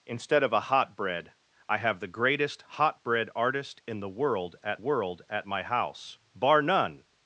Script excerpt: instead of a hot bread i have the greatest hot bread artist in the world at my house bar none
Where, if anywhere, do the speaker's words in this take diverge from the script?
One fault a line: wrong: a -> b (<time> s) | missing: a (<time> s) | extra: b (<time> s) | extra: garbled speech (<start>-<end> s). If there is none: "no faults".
extra: world at (4.8 s)